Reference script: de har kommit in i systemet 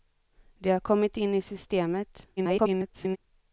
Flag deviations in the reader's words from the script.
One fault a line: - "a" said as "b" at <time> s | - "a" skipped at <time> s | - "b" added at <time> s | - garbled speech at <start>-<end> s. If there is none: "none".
- garbled speech at 2.4-3.2 s